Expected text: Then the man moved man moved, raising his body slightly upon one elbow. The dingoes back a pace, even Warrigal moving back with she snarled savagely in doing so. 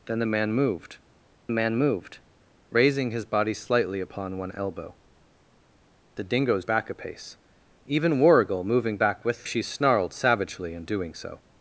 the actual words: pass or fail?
pass